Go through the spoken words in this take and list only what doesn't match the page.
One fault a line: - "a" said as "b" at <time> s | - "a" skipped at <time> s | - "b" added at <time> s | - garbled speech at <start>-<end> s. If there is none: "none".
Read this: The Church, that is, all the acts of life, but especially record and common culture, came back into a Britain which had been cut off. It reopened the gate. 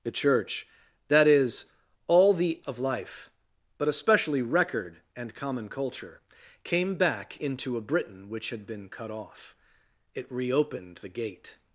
- "acts" skipped at 2.6 s